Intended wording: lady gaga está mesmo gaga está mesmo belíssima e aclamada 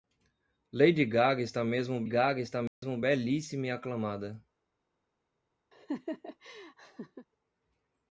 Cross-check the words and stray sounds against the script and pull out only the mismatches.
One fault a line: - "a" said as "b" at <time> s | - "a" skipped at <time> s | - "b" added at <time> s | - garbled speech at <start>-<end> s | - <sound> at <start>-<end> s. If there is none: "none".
- dropout at 2.7-2.8 s
- laugh at 5.7-7.3 s